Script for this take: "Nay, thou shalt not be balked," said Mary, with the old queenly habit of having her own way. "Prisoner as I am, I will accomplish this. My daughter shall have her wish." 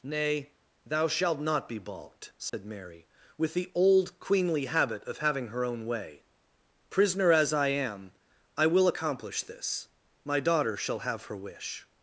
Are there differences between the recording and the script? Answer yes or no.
no